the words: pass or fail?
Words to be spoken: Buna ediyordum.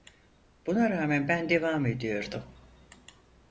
fail